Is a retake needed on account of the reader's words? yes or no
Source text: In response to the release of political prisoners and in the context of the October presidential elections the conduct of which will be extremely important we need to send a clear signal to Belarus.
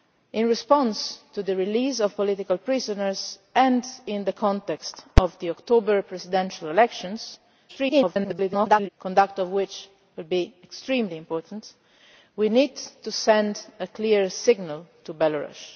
yes